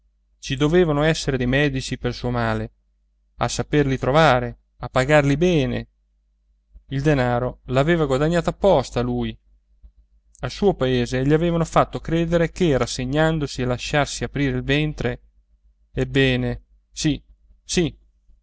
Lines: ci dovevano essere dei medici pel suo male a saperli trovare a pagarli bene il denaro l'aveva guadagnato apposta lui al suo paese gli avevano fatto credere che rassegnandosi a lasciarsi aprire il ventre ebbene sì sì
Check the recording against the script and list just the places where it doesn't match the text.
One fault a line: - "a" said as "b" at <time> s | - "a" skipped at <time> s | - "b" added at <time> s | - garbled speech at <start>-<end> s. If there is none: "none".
none